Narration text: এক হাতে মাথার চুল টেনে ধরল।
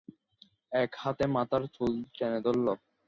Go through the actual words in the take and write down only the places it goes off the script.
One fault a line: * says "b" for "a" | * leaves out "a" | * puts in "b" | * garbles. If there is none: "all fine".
all fine